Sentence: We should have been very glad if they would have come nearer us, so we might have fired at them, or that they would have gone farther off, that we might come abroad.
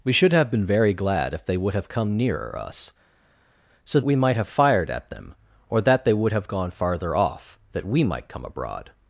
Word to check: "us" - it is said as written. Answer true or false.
true